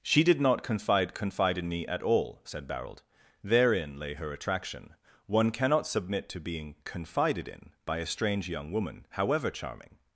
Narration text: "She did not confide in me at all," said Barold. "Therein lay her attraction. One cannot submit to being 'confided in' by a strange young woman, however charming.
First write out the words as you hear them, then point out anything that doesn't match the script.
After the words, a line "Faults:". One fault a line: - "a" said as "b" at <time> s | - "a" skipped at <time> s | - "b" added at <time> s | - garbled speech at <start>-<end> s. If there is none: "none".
"She did not confide confide in me at all," said Barold. "Therein lay her attraction. One cannot submit to being 'confided in' by a strange young woman, however charming.
Faults:
- "confide" added at 1.1 s